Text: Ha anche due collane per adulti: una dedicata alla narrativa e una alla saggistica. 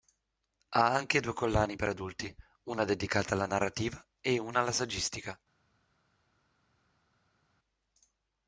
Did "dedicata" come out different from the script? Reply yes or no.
no